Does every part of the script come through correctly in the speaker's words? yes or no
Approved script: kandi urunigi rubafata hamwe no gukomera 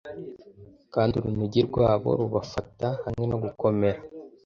no